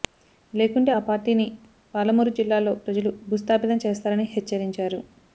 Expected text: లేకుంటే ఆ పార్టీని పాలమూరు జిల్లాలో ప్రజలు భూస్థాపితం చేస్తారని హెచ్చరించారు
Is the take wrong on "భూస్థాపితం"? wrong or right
right